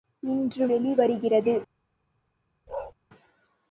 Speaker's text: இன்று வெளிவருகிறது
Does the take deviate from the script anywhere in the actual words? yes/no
no